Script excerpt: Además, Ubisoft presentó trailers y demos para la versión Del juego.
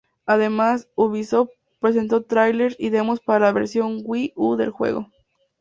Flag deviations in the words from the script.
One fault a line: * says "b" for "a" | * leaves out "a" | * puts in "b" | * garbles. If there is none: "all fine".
* puts in "Wii U"